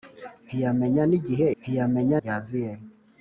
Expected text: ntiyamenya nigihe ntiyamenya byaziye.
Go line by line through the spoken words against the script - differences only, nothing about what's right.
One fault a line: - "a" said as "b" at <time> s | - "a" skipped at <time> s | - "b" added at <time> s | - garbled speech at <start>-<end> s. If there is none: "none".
none